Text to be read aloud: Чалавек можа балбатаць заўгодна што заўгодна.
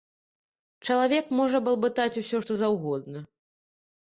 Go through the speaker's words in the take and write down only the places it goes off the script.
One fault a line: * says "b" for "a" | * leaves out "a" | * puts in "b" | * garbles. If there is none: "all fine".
* says "усё" for "заўгодна"